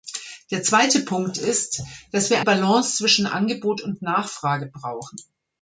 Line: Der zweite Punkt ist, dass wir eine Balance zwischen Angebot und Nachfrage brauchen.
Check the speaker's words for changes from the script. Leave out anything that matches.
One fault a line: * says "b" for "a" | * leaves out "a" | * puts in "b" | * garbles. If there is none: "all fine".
* leaves out "eine"